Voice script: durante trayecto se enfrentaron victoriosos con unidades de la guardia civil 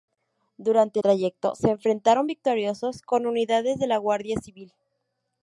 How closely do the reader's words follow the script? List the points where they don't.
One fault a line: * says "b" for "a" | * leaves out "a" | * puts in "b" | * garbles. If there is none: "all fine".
all fine